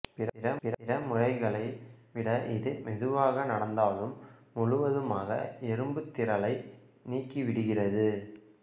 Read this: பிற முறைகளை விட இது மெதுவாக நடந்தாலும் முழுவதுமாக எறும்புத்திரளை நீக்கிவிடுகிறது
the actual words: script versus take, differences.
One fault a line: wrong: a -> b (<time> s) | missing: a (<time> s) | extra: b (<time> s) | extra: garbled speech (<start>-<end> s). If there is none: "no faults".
extra: பிற (0.6 s)